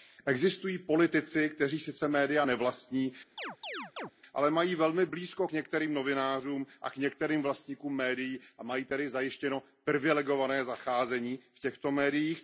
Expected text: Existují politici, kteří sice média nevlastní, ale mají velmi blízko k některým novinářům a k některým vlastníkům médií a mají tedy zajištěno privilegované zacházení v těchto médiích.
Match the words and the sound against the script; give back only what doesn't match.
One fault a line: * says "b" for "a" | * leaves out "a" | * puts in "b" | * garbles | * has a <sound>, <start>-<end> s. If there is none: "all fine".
* has a chirp, 3.4-4.1 s